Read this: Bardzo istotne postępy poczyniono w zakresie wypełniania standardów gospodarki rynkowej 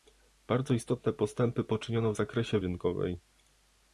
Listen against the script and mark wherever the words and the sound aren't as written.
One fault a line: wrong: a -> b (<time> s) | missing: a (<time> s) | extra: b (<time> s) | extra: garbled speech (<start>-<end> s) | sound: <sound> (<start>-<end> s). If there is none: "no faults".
missing: wypełniania standardów gospodarki (2.6 s)